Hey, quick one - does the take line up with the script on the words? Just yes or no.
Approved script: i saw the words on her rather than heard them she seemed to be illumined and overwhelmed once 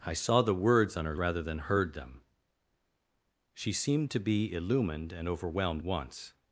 yes